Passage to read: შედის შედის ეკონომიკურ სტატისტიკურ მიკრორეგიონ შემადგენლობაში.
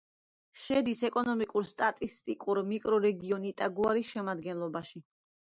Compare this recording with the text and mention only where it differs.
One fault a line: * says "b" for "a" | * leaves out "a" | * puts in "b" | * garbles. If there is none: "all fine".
* leaves out "შედის"
* puts in "იტაგუარის"